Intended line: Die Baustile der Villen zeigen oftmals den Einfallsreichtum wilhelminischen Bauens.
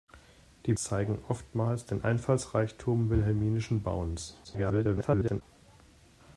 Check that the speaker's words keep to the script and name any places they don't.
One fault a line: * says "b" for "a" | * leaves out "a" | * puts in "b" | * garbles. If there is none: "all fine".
* leaves out "Baustile der Villen"
* garbles